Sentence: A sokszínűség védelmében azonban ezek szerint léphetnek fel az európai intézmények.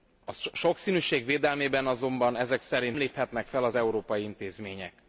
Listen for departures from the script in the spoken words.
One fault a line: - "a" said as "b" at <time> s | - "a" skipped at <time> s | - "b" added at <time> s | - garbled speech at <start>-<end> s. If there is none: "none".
none